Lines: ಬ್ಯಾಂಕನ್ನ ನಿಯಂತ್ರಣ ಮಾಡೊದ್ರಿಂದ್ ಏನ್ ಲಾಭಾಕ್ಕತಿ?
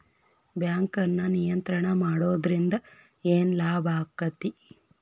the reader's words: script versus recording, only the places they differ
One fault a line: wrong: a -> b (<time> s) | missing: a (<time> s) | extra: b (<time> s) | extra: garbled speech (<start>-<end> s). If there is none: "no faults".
no faults